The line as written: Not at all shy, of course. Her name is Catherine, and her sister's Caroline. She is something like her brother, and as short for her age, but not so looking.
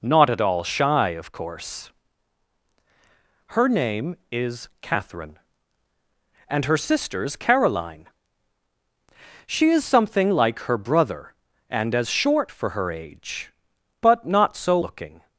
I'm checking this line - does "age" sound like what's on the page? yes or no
yes